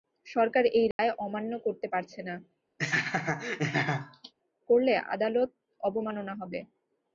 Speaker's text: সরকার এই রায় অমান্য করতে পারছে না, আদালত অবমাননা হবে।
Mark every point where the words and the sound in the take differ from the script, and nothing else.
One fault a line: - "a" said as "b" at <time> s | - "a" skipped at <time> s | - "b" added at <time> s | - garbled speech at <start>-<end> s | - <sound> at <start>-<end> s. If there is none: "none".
- dropout at 0.9-1.0 s
- laugh at 2.8-4.3 s
- "করলে" added at 4.7 s